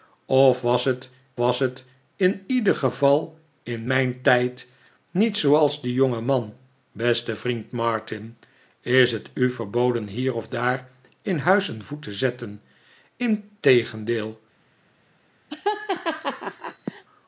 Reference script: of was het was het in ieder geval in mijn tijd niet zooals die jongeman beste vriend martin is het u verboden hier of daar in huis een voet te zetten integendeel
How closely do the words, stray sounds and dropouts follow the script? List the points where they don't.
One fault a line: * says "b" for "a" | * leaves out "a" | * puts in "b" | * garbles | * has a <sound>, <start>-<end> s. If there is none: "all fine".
* has a laugh, 15.5-17.0 s